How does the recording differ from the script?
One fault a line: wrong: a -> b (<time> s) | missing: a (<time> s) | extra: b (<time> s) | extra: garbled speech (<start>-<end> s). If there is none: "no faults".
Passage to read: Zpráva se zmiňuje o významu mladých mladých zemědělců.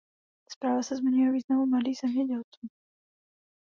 missing: mladých (2.0 s)